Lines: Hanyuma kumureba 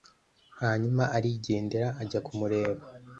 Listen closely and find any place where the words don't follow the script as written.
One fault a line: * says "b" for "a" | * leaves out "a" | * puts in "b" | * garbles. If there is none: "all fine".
* puts in "arigendera ajya"